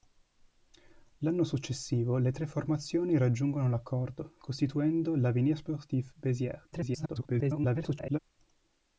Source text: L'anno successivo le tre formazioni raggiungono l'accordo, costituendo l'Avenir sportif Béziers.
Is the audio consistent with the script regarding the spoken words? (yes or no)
no